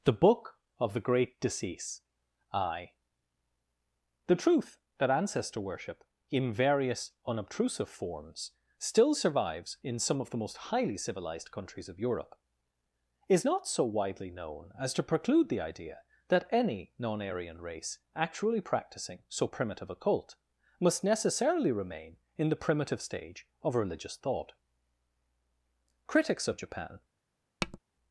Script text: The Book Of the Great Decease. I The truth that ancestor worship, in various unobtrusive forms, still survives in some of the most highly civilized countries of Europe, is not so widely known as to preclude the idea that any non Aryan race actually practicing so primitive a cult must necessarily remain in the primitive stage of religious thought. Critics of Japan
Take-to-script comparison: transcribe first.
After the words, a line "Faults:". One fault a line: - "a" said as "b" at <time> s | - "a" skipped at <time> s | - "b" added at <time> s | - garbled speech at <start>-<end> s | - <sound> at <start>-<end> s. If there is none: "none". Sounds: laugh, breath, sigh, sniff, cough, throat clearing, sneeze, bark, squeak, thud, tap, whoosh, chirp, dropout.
The Book Of the Great Decease. I The truth that ancestor worship, in various unobtrusive forms, still survives in some of the most highly civilized countries of Europe, is not so widely known as to preclude the idea that any non Aryan race actually practicing so primitive a cult must necessarily remain in the primitive stage of religious thought. Critics of Japan
Faults:
- tap at 27.6-27.8 s